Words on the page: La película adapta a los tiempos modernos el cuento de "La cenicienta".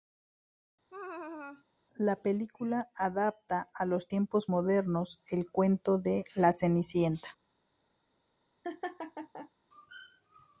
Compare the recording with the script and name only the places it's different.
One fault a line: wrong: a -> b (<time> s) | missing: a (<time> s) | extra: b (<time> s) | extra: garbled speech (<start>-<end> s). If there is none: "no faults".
no faults